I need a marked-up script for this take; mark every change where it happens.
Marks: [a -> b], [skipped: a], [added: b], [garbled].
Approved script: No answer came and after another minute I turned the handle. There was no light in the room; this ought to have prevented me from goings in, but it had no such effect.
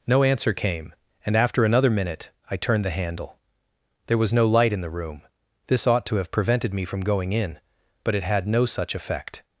No answer came and after another minute I turned the handle. There was no light in the room; this ought to have prevented me from [goings -> going] in, but it had no such effect.